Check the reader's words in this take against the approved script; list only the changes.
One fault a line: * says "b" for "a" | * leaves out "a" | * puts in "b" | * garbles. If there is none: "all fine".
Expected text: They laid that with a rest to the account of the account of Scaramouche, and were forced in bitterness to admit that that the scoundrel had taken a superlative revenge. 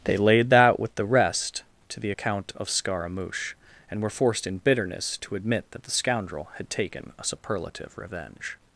* says "the" for "a"
* leaves out "the account of"
* leaves out "that"